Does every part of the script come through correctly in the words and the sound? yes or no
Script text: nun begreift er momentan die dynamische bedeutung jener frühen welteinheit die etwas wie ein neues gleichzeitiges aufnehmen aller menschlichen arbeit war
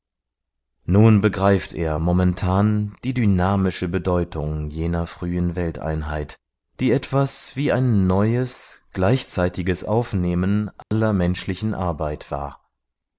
no